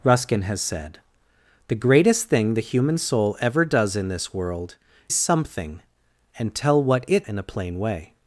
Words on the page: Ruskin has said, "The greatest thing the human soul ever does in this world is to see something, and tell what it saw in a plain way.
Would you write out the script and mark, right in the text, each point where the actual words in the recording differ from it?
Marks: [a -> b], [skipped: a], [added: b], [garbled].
Ruskin has said, "The greatest thing the human soul ever does in this world [skipped: is to see] something, and tell what it [skipped: saw] in a plain way.